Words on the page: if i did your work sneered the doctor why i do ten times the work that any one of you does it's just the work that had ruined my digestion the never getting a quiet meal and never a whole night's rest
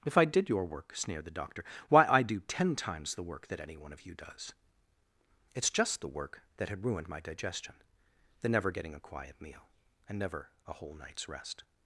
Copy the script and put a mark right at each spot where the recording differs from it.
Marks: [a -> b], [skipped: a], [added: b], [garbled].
if i did your work sneered the doctor why i do ten times the work that any one of you does it's just the work that had ruined my digestion the never getting a quiet meal and never a whole night's rest